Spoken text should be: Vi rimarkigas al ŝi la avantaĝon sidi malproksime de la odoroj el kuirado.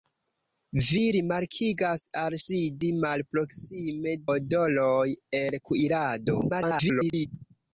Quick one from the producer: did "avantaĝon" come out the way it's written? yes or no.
no